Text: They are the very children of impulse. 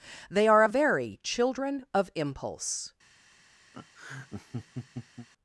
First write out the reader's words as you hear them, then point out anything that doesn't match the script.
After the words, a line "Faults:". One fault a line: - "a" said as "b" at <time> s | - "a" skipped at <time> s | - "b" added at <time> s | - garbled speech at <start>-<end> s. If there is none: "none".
They are a very children of impulse.
Faults:
- "the" said as "a" at 0.6 s